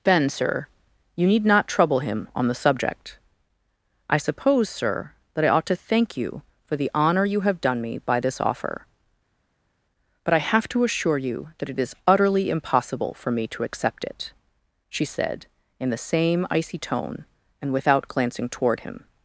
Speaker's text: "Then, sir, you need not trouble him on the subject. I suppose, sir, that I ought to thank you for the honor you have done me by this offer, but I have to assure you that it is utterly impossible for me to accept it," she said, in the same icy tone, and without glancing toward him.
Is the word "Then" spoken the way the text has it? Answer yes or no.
no